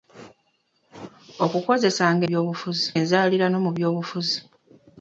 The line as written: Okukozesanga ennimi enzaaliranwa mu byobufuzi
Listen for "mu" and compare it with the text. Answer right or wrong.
right